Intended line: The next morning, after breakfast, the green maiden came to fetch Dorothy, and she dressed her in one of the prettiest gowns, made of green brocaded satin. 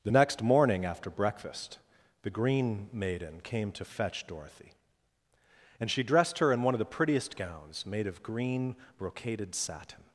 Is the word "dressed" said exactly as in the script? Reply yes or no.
yes